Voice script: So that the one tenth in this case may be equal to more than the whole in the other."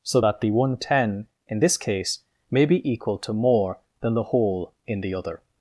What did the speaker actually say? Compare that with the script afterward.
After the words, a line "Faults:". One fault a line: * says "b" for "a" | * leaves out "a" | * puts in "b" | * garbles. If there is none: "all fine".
So that the one ten in this case may be equal to more than the whole in the other."
Faults:
* says "ten" for "tenth"